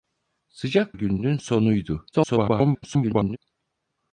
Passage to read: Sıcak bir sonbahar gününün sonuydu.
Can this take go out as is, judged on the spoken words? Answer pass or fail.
fail